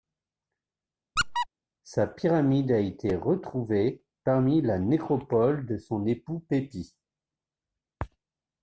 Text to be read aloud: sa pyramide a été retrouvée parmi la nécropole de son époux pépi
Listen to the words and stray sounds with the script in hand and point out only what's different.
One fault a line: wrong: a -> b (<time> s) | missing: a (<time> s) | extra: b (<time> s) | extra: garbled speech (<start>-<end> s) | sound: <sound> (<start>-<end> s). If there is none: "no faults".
sound: squeak (1.2-1.5 s)